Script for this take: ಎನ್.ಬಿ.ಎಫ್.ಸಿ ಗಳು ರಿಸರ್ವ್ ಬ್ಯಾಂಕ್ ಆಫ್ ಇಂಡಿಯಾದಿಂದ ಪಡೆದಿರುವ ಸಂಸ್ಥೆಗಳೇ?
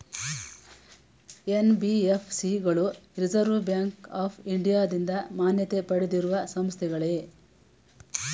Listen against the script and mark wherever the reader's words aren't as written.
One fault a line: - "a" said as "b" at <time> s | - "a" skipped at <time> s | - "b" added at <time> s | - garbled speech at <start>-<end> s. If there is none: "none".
- "ಮಾನ್ಯತೆ" added at 5.3 s